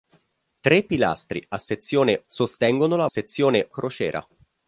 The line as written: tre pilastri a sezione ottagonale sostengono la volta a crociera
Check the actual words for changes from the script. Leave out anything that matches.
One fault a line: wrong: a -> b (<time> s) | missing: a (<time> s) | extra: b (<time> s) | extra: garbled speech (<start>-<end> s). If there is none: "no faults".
missing: ottagonale (2.2 s)
wrong: volta -> sezione (3.1 s)